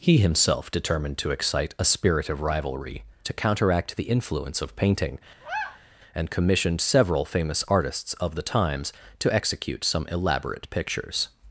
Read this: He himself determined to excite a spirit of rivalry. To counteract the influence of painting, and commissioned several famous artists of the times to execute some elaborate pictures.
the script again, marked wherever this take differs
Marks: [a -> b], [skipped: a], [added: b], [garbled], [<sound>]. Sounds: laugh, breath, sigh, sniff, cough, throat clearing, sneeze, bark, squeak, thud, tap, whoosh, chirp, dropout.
He himself determined to excite a spirit of rivalry. To counteract the influence of painting, [sigh] and commissioned several famous artists of the times to execute some elaborate pictures.